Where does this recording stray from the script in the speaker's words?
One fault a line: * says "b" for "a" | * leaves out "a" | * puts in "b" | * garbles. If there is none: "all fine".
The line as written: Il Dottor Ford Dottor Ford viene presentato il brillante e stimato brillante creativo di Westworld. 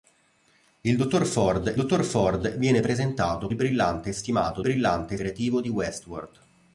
all fine